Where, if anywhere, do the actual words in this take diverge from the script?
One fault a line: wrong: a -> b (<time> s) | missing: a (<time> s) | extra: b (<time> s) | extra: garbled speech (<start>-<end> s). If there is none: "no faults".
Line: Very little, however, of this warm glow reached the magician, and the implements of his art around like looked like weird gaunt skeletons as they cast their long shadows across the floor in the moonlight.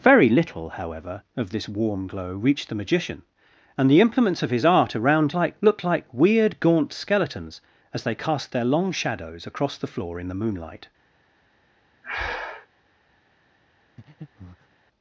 no faults